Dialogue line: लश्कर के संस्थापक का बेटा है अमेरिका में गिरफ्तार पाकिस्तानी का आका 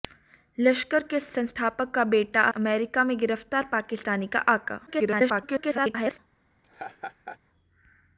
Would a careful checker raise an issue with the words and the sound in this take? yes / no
yes